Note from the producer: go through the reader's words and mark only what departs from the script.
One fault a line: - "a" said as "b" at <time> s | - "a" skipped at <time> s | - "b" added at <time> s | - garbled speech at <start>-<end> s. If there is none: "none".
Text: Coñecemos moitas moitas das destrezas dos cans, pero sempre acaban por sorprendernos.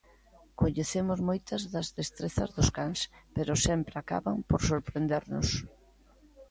- "moitas" skipped at 1.6 s